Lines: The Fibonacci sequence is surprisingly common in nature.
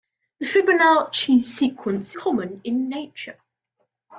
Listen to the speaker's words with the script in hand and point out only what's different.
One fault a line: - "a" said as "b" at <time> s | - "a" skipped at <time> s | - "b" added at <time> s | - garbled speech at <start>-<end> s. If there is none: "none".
- "is surprisingly" skipped at 2.2 s